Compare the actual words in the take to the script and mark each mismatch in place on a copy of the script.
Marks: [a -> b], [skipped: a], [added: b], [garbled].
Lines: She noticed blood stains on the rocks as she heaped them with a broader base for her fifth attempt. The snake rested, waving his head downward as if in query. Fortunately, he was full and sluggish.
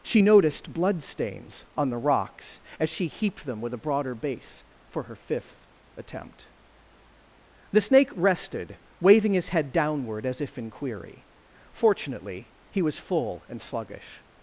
She noticed blood stains on the rocks as she heaped them with a broader base for her fifth attempt. The snake rested, waving his head downward as if in query. Fortunately, he was full and sluggish.